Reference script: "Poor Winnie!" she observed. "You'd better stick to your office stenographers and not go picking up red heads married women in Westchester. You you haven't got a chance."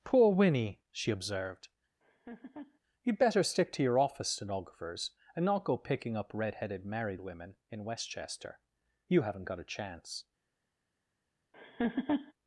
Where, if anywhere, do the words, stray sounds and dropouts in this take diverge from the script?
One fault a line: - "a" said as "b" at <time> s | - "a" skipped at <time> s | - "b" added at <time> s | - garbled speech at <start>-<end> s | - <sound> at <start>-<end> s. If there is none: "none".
- laugh at 2.0-2.8 s
- "heads" said as "headed" at 6.5 s
- "you" skipped at 9.2 s
- laugh at 11.5-12.3 s